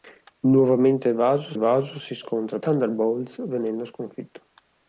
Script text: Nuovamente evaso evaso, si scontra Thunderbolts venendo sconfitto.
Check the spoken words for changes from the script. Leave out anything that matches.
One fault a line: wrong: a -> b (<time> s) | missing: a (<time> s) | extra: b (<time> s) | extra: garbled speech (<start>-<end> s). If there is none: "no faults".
no faults